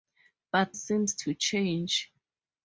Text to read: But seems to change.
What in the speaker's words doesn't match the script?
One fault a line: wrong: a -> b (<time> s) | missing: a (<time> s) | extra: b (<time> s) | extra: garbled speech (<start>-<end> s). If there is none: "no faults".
no faults